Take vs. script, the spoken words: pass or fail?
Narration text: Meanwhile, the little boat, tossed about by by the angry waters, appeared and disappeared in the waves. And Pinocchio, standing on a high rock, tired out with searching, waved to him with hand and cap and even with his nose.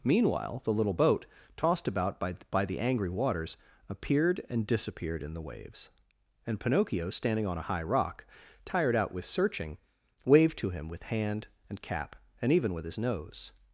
pass